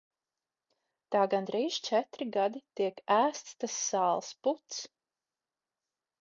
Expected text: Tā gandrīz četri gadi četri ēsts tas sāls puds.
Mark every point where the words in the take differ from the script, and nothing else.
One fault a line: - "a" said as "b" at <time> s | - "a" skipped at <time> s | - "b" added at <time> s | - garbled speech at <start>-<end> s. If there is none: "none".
- "četri" said as "tiek" at 2.8 s